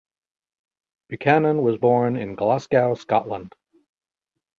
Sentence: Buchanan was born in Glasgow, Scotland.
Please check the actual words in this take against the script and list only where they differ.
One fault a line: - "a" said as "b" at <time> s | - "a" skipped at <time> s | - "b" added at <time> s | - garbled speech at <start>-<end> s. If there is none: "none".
none